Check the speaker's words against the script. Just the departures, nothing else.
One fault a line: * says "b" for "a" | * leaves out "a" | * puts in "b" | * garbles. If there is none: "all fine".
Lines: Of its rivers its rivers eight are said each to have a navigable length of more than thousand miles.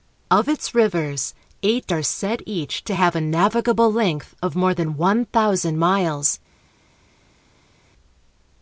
* leaves out "its rivers"
* puts in "one"